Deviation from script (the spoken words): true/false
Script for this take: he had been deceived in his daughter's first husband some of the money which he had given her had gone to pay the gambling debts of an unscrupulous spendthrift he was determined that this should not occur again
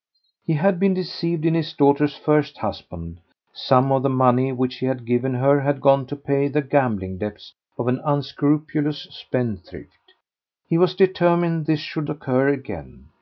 true